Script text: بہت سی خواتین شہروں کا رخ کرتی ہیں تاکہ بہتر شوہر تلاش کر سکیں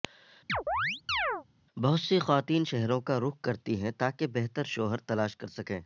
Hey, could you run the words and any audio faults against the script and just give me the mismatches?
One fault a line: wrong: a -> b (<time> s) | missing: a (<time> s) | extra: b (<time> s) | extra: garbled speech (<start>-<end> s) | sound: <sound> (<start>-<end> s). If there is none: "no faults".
sound: chirp (0.5-1.4 s)